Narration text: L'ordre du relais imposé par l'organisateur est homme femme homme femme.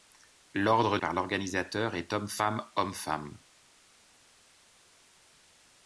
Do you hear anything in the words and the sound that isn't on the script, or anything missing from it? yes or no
yes